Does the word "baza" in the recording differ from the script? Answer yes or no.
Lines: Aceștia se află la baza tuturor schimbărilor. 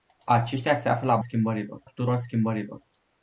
yes